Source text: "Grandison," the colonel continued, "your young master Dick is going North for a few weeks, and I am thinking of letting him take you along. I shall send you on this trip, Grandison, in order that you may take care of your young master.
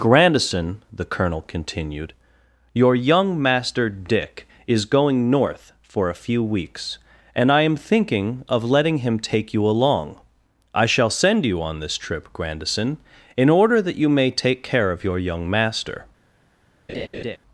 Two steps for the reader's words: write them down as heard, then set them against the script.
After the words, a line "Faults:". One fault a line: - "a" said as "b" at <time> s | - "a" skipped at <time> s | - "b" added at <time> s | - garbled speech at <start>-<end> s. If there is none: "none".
"Grandison," the colonel continued, "your young master Dick is going North for a few weeks, and I am thinking of letting him take you along. I shall send you on this trip, Grandison, in order that you may take care of your young master.
Faults:
none